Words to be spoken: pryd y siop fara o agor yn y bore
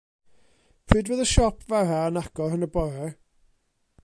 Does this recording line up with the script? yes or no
no